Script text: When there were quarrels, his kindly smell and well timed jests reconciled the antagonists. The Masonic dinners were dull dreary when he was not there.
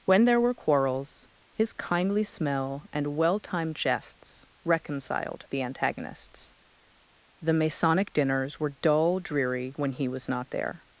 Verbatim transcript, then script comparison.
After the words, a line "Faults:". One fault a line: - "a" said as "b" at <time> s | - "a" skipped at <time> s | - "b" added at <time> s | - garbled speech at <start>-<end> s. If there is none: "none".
When there were quarrels, his kindly smell and well timed jests reconciled the antagonists. The Masonic dinners were dull dreary when he was not there.
Faults:
none